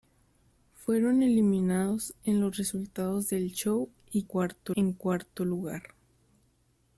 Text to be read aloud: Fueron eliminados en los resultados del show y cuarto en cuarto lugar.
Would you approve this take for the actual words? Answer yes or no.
yes